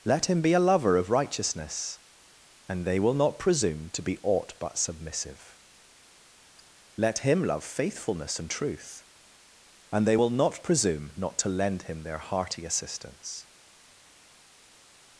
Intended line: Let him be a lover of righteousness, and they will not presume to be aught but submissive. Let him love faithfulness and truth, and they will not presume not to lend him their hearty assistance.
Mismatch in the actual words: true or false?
false